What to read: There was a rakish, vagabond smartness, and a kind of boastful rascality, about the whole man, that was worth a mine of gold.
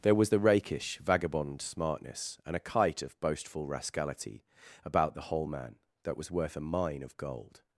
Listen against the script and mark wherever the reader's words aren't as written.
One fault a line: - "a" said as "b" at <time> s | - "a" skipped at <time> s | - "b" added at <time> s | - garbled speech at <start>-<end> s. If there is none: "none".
- "a" said as "the" at 0.3 s
- "kind" said as "kite" at 2.6 s